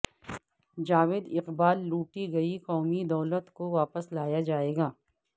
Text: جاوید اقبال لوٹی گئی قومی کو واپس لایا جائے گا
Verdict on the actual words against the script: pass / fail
fail